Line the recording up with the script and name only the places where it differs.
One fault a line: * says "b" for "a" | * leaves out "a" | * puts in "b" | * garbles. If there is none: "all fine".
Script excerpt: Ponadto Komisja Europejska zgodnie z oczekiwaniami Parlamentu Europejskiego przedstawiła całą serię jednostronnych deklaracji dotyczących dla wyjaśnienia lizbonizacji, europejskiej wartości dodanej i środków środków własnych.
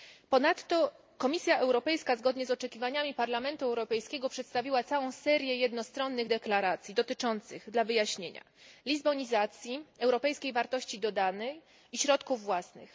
* leaves out "środków"